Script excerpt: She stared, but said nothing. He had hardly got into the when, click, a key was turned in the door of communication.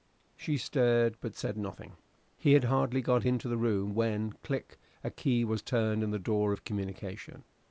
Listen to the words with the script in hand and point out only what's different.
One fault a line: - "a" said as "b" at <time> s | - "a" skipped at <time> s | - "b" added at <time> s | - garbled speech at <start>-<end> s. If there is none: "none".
- "room" added at 3.6 s